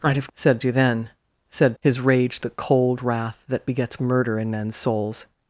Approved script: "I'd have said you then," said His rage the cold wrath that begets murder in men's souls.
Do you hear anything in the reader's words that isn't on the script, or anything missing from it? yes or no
no